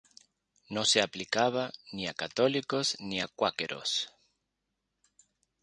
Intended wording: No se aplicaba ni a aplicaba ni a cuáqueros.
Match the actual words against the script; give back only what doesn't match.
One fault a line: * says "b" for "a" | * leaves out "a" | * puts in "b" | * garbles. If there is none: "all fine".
* says "católicos" for "aplicaba"